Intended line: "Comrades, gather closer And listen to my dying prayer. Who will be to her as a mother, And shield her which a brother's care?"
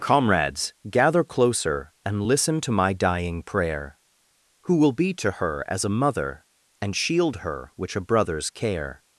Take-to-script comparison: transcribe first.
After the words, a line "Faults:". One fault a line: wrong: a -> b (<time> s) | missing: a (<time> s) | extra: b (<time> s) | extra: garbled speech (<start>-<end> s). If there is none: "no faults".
"Comrades, gather closer And listen to my dying prayer. Who will be to her as a mother, And shield her which a brother's care?"
Faults:
no faults